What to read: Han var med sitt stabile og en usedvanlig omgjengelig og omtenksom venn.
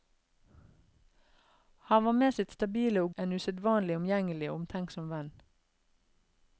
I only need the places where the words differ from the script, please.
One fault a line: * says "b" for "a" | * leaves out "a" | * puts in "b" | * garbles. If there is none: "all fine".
all fine